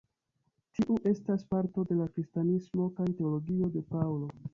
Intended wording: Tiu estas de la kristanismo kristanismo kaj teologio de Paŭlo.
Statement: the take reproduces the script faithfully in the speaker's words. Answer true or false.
false